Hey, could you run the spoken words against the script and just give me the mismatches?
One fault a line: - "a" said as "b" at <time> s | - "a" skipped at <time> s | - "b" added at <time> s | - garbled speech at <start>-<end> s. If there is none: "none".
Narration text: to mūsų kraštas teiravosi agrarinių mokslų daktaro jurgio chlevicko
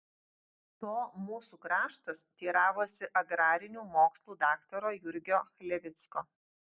none